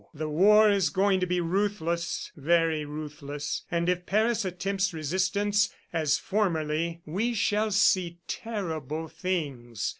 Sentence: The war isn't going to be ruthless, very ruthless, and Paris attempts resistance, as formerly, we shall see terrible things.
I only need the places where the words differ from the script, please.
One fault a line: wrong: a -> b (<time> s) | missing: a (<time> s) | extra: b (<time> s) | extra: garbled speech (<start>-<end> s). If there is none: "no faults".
wrong: isn't -> is (0.7 s)
extra: if (3.9 s)